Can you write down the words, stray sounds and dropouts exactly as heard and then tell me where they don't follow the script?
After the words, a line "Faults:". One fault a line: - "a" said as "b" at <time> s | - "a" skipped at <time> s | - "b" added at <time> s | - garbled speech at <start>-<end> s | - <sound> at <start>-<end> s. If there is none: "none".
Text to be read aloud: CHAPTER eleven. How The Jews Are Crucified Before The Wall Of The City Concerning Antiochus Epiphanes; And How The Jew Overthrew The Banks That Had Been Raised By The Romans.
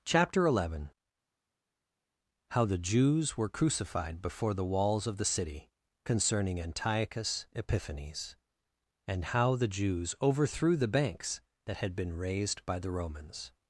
CHAPTER eleven. How The Jews Were Crucified Before The Walls Of The City Concerning Antiochus Epiphanes; And How The Jews Overthrew The Banks That Had Been Raised By The Romans.
Faults:
- "Are" said as "Were" at 3.3 s
- "Wall" said as "Walls" at 4.7 s
- "Jew" said as "Jews" at 9.7 s